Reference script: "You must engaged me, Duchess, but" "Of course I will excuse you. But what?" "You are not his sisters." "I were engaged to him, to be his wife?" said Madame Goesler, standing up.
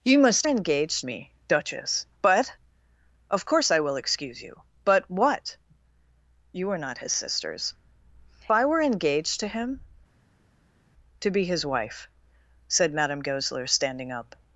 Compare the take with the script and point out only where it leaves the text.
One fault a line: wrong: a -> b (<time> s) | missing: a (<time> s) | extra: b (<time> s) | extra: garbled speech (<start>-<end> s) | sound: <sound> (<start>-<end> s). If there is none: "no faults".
no faults